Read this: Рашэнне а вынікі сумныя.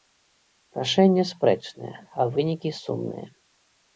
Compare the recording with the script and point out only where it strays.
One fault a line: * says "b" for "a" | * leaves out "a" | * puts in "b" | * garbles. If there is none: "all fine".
* puts in "спрэчнае"